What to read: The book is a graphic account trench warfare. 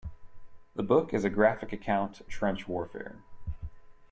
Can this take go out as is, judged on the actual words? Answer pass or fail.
pass